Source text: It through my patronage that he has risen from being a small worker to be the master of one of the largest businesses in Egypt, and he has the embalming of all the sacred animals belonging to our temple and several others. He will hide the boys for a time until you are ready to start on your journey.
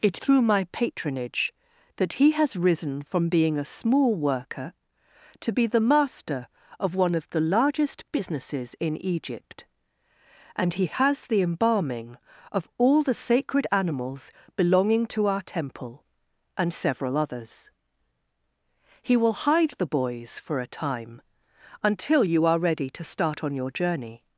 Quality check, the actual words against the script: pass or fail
pass